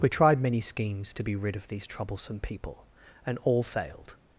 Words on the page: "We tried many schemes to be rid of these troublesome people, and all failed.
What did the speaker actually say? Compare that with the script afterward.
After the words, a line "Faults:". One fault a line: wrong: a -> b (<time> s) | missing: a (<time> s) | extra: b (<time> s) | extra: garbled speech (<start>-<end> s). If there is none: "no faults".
"We tried many schemes to be rid of these troublesome people, and all failed.
Faults:
no faults